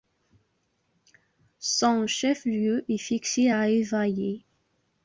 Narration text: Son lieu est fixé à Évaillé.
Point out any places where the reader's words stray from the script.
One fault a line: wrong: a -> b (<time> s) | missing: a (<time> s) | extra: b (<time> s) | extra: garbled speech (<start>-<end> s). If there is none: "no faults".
extra: chef (2.1 s)